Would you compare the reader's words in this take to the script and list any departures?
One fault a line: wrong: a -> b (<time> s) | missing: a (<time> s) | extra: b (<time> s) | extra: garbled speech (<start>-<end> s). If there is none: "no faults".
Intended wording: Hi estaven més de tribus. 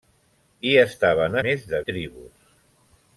no faults